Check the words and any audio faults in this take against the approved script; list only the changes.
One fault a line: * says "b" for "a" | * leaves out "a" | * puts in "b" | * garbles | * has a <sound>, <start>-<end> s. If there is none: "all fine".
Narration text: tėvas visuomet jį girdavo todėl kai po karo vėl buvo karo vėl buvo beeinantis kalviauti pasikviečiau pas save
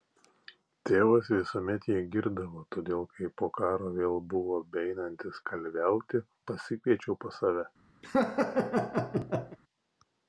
* leaves out "karo vėl buvo"
* has a laugh, 8.0-9.6 s